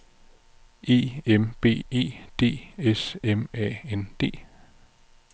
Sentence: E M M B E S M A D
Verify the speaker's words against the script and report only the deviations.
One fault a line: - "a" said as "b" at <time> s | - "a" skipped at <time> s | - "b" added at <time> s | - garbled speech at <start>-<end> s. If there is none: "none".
- "M" skipped at 1.5 s
- "D" added at 2.4 s
- "N" added at 3.9 s